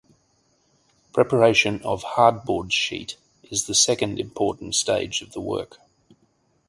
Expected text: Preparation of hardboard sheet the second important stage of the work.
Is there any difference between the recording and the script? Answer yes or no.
yes